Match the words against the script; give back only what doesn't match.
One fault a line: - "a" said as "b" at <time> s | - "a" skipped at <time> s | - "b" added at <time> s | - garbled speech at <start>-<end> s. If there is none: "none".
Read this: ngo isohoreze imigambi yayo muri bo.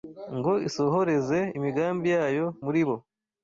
none